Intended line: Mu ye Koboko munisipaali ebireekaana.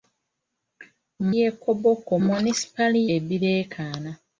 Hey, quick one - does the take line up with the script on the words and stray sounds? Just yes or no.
yes